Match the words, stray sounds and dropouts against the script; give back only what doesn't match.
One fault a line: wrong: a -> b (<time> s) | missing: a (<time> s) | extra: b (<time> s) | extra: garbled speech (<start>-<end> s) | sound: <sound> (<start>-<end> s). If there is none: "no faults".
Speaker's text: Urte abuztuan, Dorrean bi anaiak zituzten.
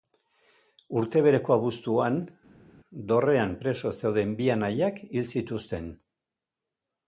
extra: bereko (1.2 s)
extra: preso zeuden (3.6 s)
extra: hil (5.1 s)